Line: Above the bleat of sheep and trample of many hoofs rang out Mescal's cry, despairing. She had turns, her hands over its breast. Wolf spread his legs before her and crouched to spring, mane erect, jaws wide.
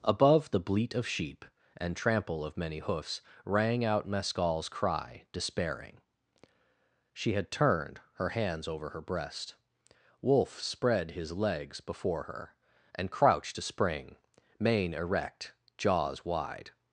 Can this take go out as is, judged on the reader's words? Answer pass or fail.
fail